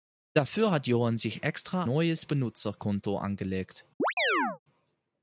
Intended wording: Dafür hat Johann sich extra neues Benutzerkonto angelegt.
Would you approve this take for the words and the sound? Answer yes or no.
no